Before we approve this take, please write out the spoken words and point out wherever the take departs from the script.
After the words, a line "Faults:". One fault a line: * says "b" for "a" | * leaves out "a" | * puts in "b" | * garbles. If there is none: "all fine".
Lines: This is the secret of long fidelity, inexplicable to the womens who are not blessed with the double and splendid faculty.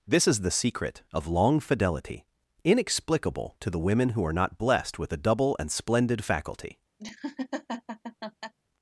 This is the secret of long fidelity, inexplicable to the women who are not blessed with the double and splendid faculty.
Faults:
* says "women" for "womens"